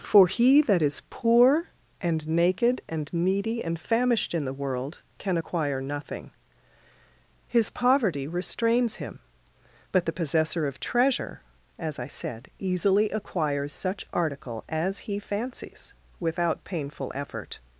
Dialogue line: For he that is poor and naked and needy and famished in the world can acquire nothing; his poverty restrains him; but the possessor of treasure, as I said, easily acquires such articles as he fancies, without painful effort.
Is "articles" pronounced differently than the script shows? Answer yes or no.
yes